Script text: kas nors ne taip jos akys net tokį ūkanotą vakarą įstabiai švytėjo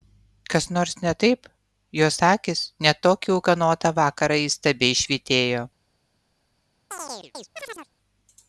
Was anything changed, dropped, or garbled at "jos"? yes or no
no